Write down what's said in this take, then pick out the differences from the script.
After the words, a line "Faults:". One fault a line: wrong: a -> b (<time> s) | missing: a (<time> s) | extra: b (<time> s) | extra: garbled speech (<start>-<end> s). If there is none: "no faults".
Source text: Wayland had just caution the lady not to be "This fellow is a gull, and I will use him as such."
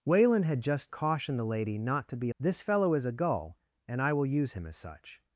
Wayland had just caution the lady not to be "This fellow is a gull, and I will use him as such."
Faults:
no faults